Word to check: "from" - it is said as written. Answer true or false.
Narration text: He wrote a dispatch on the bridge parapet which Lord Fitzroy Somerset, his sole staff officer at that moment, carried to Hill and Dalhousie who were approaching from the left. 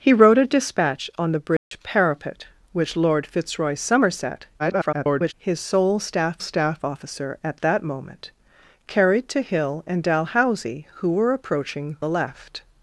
false